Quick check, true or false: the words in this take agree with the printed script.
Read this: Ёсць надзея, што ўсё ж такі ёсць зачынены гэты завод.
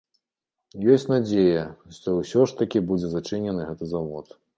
false